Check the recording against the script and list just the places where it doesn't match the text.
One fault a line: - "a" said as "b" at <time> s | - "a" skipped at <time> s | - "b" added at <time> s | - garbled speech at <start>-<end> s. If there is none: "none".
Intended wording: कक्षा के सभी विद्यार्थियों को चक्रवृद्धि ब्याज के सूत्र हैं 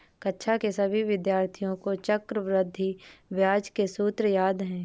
- "याद" added at 4.3 s